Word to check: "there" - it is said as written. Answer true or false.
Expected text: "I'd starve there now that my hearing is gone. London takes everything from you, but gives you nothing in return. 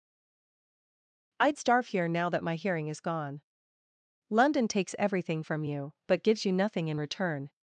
false